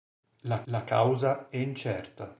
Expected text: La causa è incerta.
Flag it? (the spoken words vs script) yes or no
yes